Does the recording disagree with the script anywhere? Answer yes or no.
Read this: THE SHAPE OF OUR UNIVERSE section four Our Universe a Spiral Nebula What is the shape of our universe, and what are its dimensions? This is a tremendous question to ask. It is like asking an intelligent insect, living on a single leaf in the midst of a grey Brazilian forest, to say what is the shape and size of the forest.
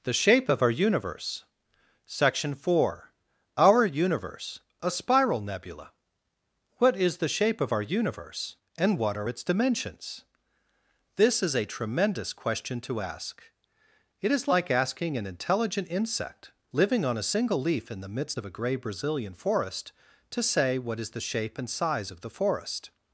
no